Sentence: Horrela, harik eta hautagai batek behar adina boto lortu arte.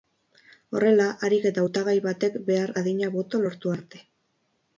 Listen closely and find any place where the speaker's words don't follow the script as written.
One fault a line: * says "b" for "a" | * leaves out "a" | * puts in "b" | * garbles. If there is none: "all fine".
all fine